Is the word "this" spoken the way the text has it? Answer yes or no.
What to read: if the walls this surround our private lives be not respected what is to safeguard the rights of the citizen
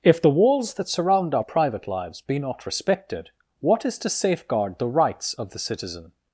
no